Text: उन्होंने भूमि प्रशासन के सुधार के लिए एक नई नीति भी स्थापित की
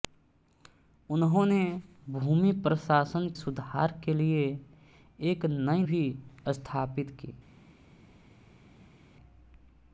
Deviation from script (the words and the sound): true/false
true